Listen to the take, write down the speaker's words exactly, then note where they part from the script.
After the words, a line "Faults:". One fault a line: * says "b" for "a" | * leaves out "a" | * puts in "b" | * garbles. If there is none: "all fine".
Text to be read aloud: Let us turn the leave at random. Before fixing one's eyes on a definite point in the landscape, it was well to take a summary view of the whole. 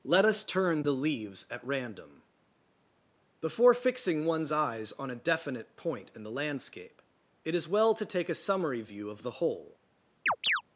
Let us turn the leaves at random. Before fixing one's eyes on a definite point in the landscape, it is well to take a summary view of the whole.
Faults:
* says "leaves" for "leave"
* says "is" for "was"